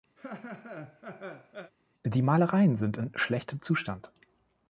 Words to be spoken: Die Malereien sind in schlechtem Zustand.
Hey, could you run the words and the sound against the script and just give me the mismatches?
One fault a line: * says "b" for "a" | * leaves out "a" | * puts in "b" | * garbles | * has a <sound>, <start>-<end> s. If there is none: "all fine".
* has a laugh, 0.2-1.7 s